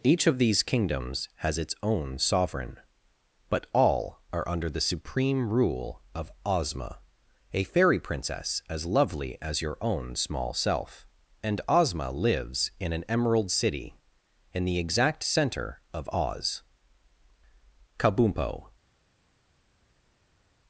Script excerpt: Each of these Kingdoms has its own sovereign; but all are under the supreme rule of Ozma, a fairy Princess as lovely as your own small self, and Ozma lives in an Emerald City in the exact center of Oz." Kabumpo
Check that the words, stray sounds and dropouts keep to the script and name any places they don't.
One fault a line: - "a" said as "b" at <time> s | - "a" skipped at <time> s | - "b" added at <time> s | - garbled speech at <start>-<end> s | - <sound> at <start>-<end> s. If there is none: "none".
none